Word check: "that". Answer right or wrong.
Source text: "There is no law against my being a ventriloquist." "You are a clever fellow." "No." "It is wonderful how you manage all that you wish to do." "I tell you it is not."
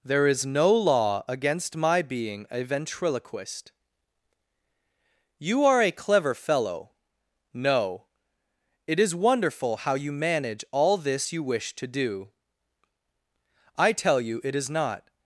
wrong